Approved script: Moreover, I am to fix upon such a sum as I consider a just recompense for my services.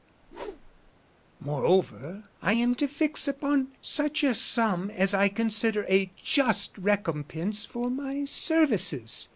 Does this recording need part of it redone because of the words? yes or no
no